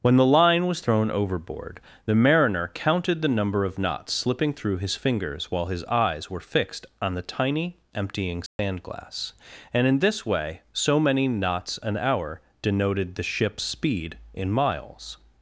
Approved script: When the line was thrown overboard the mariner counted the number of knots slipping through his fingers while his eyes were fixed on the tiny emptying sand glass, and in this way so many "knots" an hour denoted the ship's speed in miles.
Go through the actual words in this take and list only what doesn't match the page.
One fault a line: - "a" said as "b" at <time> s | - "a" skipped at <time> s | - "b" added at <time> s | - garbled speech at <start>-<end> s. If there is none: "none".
none